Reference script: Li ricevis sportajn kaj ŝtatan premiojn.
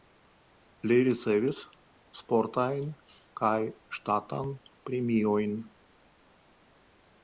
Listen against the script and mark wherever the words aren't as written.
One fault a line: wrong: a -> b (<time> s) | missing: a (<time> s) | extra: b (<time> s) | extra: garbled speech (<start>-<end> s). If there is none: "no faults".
no faults